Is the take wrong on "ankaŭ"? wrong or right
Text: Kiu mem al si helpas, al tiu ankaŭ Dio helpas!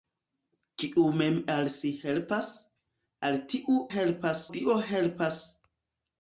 wrong